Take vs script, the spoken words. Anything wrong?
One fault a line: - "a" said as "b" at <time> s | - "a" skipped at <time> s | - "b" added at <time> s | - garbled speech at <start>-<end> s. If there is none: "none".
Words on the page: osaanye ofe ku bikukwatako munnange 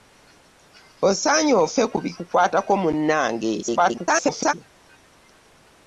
- garbled speech at 3.6-4.5 s